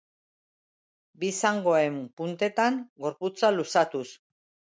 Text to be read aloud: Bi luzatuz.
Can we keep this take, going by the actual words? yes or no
no